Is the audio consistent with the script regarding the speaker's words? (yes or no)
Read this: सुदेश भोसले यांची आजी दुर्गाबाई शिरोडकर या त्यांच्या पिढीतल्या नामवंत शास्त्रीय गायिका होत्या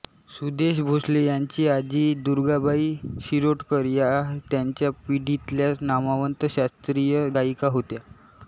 yes